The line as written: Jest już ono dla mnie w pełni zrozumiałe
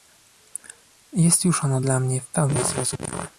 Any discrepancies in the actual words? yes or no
no